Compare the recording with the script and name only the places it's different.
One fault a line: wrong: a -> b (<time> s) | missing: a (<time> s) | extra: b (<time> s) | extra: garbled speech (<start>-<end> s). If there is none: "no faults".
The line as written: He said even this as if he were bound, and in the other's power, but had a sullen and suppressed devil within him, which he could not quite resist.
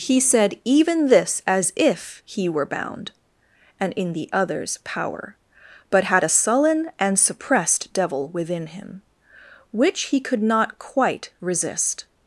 no faults